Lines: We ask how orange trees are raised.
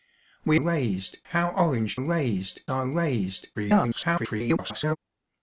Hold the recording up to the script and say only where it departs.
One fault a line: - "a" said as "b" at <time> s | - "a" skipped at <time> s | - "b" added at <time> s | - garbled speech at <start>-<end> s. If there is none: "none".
- "ask" said as "raised" at 0.6 s
- "trees" said as "raised" at 2.0 s
- garbled speech at 3.5-5.0 s